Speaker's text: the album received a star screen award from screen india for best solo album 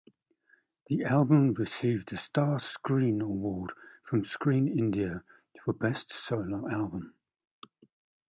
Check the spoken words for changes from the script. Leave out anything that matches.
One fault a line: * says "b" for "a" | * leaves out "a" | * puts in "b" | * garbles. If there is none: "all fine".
all fine